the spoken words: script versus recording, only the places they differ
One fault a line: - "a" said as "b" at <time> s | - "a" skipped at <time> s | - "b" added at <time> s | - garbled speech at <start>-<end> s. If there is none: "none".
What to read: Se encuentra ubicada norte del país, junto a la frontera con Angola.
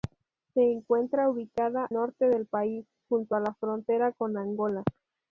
none